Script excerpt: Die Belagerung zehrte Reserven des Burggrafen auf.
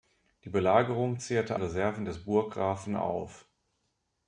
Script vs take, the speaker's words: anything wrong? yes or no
no